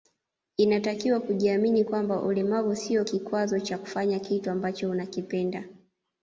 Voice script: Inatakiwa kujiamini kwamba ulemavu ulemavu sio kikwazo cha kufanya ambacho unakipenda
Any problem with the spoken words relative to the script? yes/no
yes